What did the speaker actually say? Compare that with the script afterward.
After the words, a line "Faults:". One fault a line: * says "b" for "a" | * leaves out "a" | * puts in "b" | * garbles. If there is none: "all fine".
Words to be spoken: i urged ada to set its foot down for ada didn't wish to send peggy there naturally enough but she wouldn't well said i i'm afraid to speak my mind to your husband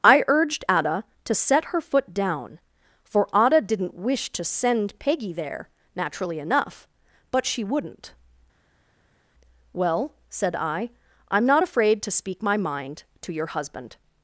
i urged ada to set her foot down for ada didn't wish to send peggy there naturally enough but she wouldn't well said i i'm not afraid to speak my mind to your husband
Faults:
* says "her" for "its"
* puts in "not"